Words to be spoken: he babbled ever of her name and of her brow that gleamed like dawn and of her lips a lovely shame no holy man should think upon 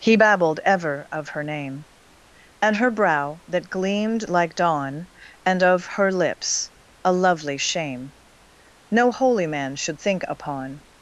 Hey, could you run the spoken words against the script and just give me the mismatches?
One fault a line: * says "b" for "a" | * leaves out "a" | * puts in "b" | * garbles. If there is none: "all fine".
* leaves out "of"